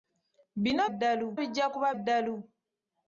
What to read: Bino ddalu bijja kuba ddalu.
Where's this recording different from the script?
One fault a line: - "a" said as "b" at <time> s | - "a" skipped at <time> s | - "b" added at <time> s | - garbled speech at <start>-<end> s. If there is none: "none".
none